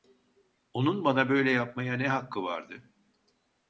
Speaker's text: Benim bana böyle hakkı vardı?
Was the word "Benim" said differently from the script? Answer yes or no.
yes